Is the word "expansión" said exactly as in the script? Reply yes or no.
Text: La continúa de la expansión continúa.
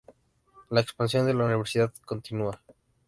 no